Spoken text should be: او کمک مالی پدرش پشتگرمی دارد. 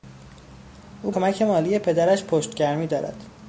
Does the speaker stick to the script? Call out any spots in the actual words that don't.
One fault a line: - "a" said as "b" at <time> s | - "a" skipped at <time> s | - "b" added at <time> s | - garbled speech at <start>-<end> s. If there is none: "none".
none